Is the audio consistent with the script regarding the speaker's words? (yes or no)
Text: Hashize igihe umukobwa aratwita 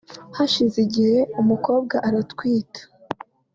yes